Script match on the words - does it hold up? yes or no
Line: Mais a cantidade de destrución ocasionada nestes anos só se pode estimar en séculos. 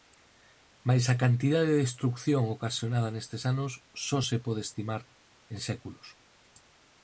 yes